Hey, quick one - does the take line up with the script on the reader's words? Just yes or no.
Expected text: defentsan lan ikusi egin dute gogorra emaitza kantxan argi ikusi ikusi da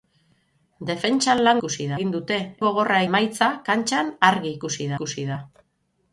yes